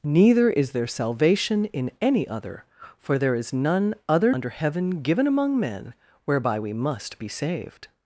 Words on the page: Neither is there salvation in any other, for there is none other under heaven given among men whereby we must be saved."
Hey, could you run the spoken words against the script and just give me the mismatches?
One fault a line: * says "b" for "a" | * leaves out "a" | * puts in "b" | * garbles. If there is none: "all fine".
all fine